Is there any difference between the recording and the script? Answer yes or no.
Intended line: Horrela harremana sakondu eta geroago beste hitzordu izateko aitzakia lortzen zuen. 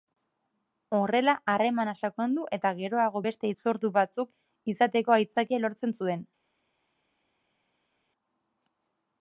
yes